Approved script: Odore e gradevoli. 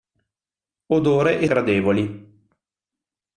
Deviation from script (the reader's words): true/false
false